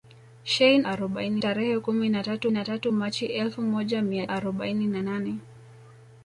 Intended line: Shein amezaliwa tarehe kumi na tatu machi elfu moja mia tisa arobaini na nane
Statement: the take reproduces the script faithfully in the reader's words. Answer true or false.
false